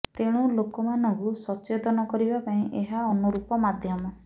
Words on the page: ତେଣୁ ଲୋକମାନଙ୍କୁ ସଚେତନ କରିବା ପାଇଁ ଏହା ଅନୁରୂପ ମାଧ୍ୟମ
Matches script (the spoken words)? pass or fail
pass